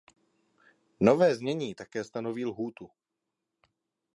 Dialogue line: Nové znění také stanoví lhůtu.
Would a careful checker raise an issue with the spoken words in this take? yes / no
no